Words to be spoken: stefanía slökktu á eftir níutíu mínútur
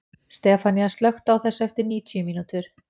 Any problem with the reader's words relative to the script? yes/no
yes